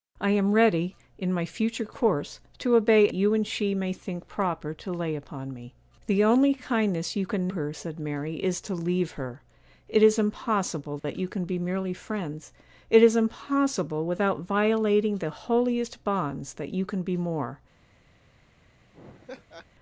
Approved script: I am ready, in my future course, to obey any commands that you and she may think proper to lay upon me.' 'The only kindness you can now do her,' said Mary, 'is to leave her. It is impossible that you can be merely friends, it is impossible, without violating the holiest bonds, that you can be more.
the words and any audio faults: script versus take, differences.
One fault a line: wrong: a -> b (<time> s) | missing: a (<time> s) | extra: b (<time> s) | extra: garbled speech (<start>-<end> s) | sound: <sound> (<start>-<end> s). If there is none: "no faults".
missing: any commands that (3.1 s)
missing: now do (7.5 s)
sound: dropout (11.0-11.0 s)
sound: laugh (18.9-19.7 s)